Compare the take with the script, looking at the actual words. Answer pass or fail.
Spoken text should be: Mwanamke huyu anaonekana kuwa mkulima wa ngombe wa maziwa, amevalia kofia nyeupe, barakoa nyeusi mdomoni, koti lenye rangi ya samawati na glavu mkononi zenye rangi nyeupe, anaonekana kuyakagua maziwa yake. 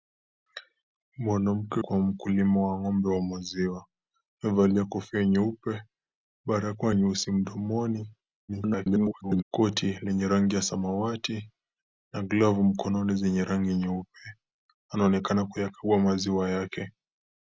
fail